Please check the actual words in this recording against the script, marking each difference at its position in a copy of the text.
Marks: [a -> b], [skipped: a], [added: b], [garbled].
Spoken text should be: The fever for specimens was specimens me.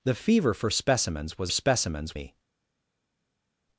The fever for specimens was specimens me.